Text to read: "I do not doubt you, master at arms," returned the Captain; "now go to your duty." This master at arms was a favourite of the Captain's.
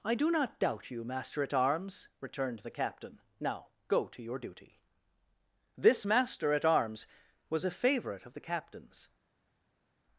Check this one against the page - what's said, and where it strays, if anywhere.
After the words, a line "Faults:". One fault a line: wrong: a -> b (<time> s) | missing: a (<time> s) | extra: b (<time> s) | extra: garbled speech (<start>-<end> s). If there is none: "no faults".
"I do not doubt you, master at arms," returned the Captain; "now go to your duty." This master at arms was a favourite of the Captain's.
Faults:
no faults